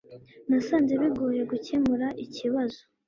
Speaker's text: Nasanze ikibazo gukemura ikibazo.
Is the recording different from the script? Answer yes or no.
yes